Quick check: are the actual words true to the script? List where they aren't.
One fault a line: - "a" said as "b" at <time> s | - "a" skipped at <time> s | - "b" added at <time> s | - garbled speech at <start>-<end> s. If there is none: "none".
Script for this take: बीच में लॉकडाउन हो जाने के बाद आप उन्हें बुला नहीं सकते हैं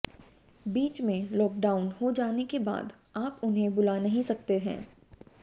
none